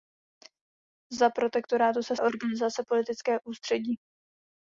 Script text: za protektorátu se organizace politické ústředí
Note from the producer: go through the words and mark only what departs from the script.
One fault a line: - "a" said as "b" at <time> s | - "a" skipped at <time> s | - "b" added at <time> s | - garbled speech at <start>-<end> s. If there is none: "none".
none